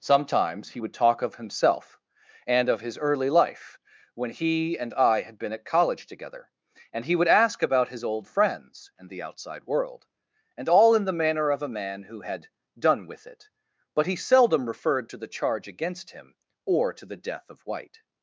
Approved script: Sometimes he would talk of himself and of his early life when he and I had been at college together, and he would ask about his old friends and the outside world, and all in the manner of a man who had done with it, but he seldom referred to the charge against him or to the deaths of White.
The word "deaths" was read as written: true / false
false